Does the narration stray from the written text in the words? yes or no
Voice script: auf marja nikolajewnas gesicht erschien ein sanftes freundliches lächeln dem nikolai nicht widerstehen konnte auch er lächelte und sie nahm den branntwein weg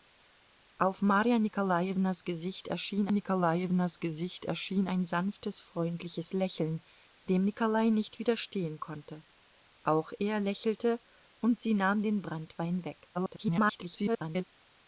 yes